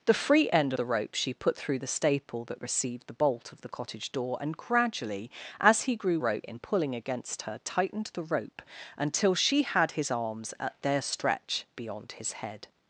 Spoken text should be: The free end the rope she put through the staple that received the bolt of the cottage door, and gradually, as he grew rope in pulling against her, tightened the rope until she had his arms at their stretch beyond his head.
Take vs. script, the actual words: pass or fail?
pass